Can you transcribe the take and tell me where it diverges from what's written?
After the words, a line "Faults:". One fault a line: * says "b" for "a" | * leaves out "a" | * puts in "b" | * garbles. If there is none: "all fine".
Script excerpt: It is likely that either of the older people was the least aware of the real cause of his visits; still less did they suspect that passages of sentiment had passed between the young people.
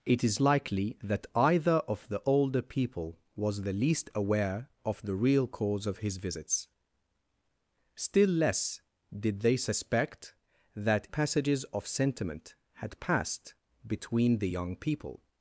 It is likely that either of the older people was the least aware of the real cause of his visits; still less did they suspect that passages of sentiment had passed between the young people.
Faults:
all fine